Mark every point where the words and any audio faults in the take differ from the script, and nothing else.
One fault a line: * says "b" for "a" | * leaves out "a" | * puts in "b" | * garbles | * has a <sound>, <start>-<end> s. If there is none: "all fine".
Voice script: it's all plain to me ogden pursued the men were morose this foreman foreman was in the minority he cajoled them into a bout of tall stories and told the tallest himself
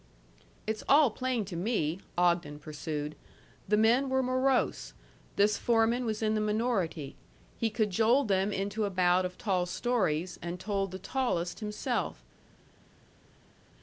* leaves out "foreman"